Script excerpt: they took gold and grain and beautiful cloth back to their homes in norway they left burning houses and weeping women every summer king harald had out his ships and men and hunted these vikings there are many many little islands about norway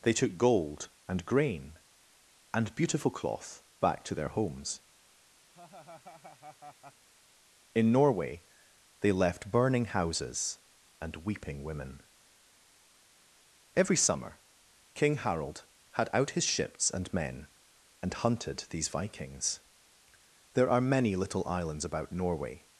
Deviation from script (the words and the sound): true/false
true